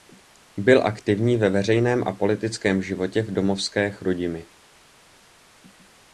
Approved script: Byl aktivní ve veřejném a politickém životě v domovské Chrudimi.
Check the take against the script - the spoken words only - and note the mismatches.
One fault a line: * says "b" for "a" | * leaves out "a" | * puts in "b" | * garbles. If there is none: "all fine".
all fine